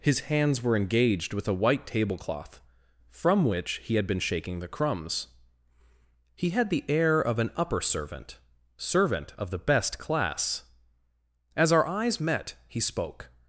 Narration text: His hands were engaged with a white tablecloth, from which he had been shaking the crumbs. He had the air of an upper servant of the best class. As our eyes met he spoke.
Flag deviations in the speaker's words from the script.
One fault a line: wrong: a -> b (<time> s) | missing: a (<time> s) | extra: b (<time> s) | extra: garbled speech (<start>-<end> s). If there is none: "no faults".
extra: servant (8.8 s)